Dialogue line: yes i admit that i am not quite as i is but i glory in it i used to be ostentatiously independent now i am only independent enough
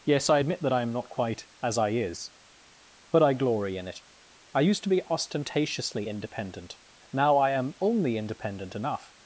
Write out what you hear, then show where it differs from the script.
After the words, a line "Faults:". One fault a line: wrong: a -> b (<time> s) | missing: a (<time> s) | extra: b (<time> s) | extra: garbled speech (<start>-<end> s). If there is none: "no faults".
yes i admit that i am not quite as i is but i glory in it i used to be ostentatiously independent now i am only independent enough
Faults:
no faults